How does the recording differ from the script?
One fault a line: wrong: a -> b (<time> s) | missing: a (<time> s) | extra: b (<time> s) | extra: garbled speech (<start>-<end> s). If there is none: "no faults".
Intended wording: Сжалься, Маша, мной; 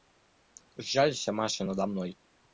extra: надо (1.6 s)